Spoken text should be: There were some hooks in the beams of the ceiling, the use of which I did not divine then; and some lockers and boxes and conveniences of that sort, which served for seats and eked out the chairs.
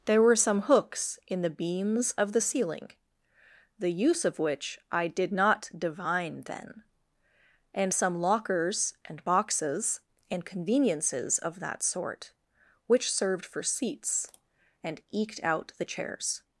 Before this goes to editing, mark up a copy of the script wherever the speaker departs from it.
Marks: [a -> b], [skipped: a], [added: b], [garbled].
There were some hooks in the beams of the ceiling, the use of which I did not divine then; and some lockers and boxes and conveniences of that sort, which served for seats and eked out the chairs.